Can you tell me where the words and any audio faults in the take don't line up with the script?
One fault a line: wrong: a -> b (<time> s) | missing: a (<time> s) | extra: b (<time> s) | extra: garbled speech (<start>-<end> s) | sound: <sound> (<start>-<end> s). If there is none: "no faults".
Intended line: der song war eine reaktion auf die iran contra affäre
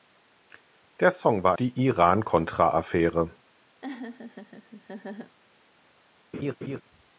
missing: eine reaktion auf (1.5 s)
sound: laugh (3.8-5.4 s)
sound: laugh (6.3-6.8 s)